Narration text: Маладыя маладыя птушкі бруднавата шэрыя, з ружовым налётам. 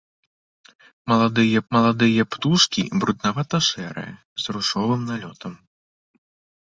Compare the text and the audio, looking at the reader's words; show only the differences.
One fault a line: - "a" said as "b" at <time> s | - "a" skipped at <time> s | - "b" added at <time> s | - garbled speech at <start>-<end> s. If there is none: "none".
none